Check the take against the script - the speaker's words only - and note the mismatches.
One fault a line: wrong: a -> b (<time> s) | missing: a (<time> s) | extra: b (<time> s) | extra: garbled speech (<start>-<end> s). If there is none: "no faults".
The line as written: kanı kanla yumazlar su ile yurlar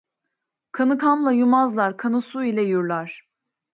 extra: kanı (2.0 s)